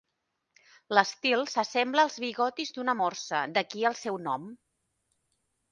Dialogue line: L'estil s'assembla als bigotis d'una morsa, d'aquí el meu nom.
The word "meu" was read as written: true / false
false